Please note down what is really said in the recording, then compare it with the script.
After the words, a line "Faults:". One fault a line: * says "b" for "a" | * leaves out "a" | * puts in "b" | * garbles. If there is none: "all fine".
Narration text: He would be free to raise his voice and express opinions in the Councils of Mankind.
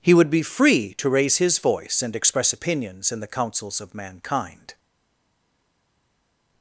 He would be free to raise his voice and express opinions in the Councils of Mankind.
Faults:
all fine